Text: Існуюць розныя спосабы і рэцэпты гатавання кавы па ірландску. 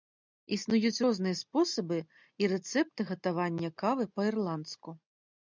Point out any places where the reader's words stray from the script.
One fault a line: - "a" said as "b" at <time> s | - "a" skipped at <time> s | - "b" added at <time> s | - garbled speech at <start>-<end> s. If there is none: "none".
none